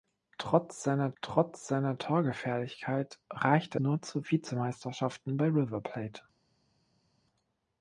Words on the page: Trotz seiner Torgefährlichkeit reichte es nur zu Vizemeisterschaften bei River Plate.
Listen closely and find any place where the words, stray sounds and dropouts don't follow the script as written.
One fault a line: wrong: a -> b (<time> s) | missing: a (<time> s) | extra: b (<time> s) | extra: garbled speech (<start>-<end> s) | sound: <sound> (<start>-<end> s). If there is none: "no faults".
extra: trotz seiner (1.2 s)
missing: es (3.8 s)